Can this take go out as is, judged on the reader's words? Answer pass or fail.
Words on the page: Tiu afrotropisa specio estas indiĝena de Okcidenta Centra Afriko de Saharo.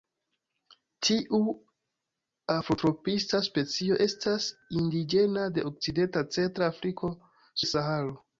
pass